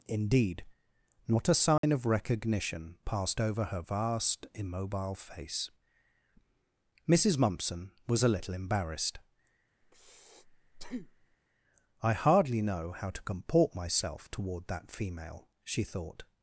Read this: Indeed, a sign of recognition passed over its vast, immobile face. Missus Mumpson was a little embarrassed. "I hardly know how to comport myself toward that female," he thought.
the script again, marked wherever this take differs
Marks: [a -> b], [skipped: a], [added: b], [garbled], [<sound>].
Indeed, [added: not] a sign [dropout] of recognition passed over [its -> her] vast, immobile face. Missus Mumpson was a little embarrassed. [breath] "I hardly know how to comport myself toward that female," [he -> she] thought.